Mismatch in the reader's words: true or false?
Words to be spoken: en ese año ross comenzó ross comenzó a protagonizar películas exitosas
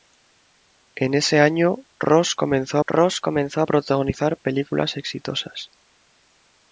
false